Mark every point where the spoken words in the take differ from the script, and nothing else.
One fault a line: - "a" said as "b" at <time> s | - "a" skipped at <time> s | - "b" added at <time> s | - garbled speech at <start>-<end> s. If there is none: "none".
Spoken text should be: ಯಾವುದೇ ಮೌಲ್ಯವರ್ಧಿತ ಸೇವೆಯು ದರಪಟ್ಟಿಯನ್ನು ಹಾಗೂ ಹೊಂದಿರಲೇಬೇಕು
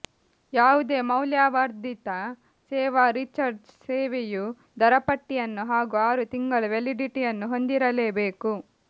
- "ಸೇವಾ ರೀಚಾರ್ಜ್" added at 2.7 s
- "ಆರು ತಿಂಗಳ ವ್ಯಾಲಿಡಿಟಿಯನ್ನು" added at 6.1 s